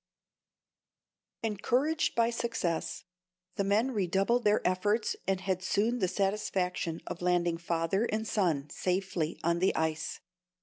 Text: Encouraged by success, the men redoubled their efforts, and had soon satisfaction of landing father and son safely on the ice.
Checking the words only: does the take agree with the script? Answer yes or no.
no